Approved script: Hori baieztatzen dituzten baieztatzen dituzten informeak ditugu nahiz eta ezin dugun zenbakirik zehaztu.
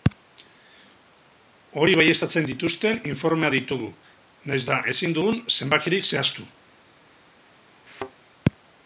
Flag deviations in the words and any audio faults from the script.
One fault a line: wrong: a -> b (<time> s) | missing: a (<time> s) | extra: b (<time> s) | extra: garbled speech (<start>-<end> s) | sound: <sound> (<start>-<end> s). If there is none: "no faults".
missing: baieztatzen dituzten (3.0 s)
sound: thud (7.9-8.1 s)